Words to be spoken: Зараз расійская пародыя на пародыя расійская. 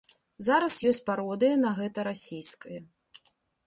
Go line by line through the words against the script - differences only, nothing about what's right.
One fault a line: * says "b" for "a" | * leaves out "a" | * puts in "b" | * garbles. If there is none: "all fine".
* says "ёсць" for "расійская"
* says "гэта" for "пародыя"